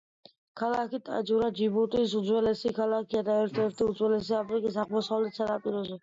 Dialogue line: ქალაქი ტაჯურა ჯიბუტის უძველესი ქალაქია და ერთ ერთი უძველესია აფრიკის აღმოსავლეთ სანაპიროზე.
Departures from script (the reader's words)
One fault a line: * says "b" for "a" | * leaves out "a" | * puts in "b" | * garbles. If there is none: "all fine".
all fine